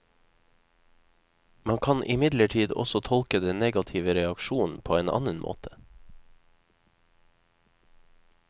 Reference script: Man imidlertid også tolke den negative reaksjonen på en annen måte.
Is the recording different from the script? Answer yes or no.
yes